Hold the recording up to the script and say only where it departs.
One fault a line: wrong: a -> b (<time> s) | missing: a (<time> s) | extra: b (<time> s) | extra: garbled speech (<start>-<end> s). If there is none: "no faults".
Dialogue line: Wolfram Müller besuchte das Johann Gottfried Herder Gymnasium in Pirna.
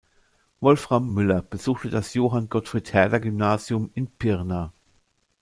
no faults